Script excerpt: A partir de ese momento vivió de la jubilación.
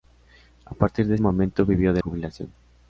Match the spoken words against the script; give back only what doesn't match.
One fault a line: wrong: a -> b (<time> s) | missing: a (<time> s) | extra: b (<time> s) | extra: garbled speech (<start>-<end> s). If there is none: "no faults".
missing: ese (1.2 s)
missing: la (2.0 s)